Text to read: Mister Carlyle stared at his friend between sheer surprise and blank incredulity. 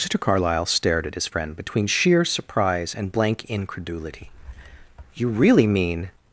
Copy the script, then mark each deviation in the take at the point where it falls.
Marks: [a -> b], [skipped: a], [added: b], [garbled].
Mister Carlyle stared at his friend between sheer surprise and blank incredulity. [added: You really mean]